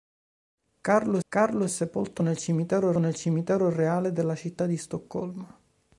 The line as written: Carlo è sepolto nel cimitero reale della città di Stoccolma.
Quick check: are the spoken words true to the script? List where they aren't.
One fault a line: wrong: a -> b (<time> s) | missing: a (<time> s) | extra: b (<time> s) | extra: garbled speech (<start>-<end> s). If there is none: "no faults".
extra: carlo (1.3 s)
extra: nel cimitero (3.0 s)